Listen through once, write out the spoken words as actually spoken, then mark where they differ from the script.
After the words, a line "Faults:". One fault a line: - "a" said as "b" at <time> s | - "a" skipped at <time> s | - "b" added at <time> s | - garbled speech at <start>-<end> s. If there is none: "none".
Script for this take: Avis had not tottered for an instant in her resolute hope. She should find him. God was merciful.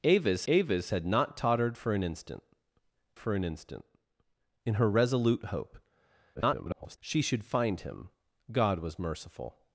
Avis avis had not tottered for an instant for an instant in her resolute hope. [garbled] She should find him. God was merciful.
Faults:
- "avis" added at 0.5 s
- "for an instant" added at 3.2 s
- garbled speech at 6.4-7.0 s